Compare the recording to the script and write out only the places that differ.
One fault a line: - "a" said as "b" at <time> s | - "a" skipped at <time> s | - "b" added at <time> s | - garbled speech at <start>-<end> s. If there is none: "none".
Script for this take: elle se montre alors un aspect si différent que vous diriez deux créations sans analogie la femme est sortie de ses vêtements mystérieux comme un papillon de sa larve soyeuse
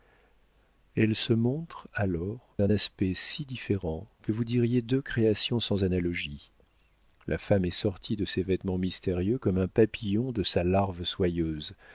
none